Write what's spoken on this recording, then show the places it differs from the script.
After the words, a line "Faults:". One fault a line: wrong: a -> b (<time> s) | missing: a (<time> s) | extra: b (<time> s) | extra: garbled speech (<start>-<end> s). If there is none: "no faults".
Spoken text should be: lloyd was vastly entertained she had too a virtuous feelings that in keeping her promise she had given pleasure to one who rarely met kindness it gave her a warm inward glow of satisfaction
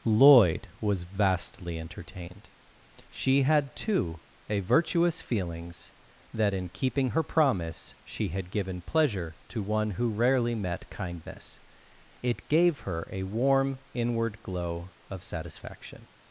lloyd was vastly entertained she had too a virtuous feelings that in keeping her promise she had given pleasure to one who rarely met kindness it gave her a warm inward glow of satisfaction
Faults:
no faults